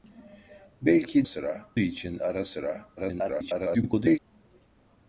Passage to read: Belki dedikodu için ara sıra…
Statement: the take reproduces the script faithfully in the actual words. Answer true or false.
false